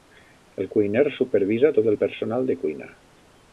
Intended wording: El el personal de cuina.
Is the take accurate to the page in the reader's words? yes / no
no